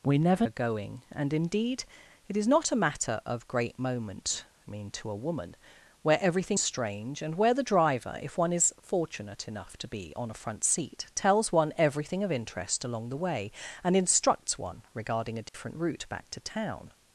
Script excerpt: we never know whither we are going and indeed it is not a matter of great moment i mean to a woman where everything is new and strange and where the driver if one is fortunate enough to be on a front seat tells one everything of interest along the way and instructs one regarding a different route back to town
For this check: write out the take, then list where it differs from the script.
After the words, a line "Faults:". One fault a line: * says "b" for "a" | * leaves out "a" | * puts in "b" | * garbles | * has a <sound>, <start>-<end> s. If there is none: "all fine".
we never are going and indeed it is not a matter of great moment i mean to a woman where everything strange and where the driver if one is fortunate enough to be on a front seat tells one everything of interest along the way and instructs one regarding a different route back to town
Faults:
* leaves out "know whither we"
* leaves out "is new and"
* has a dropout, 15.5-15.5 s